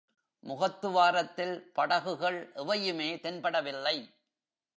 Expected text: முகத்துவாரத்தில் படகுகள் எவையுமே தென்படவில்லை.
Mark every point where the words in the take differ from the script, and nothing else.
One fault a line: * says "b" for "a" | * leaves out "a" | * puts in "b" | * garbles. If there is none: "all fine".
all fine